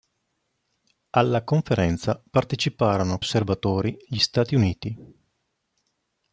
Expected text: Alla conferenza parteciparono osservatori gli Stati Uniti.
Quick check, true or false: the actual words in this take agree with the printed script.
true